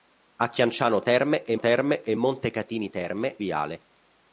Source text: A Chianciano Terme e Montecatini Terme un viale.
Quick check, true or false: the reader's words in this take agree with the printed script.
false